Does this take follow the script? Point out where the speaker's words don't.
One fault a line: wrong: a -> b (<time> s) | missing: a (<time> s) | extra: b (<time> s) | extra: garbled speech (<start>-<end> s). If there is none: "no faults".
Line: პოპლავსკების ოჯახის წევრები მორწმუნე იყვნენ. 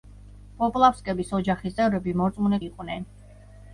no faults